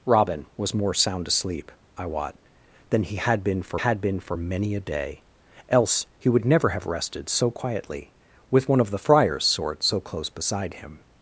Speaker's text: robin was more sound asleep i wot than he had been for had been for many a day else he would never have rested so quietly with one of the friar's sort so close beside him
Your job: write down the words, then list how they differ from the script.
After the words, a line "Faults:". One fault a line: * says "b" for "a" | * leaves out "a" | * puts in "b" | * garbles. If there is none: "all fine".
robin was more sound asleep i wot than he had been for had been for many a day else he would never have rested so quietly with one of the friar's sort so close beside him
Faults:
all fine